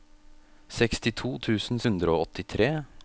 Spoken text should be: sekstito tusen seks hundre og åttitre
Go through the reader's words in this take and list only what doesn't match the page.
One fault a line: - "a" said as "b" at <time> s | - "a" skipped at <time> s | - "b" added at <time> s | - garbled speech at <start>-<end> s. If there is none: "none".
- "seks" skipped at 1.8 s